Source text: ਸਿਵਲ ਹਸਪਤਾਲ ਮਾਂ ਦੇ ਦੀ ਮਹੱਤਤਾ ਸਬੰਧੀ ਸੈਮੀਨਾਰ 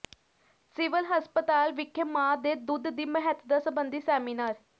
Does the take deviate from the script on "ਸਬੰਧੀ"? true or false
false